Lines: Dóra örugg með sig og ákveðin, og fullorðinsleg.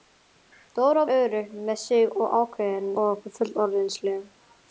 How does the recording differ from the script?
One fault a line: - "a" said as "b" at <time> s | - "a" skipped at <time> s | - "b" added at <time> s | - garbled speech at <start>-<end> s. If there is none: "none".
none